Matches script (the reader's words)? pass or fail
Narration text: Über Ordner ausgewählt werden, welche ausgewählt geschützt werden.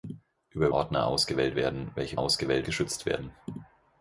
pass